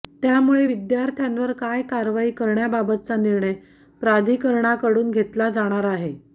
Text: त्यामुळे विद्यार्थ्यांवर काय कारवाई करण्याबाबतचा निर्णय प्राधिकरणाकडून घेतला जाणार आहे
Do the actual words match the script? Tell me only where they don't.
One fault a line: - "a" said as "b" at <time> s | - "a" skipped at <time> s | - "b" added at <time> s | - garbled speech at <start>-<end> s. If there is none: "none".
none